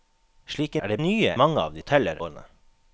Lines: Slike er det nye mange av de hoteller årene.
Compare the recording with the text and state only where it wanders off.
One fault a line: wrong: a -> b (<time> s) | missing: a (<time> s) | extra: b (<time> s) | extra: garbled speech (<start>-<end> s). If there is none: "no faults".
no faults